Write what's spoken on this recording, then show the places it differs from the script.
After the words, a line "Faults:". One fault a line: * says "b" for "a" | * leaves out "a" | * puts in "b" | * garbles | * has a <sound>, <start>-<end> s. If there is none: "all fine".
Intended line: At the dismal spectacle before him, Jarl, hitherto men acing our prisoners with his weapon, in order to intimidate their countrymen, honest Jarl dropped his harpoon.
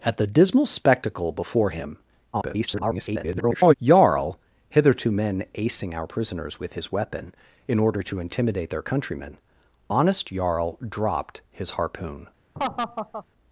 At the dismal spectacle before him, [garbled] Jarl, hitherto men acing our prisoners with his weapon, in order to intimidate their countrymen, honest Jarl dropped his harpoon.
Faults:
* garbles
* has a laugh, 12.5-13.2 s